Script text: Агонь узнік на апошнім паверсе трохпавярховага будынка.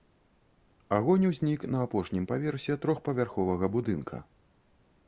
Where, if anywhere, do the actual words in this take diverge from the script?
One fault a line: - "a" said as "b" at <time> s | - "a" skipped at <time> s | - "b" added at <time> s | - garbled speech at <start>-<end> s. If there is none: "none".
none